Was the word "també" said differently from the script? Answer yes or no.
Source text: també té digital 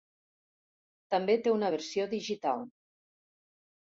no